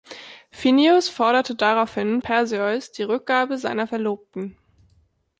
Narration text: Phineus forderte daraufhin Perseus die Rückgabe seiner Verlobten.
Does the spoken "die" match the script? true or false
true